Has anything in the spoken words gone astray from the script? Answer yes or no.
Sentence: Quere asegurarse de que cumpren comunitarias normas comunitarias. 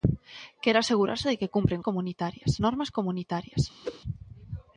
no